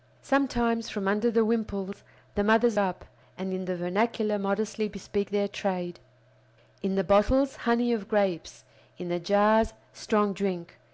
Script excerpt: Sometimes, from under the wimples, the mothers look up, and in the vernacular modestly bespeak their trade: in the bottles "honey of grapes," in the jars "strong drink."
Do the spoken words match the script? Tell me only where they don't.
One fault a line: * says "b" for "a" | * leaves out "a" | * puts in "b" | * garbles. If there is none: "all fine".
* leaves out "look"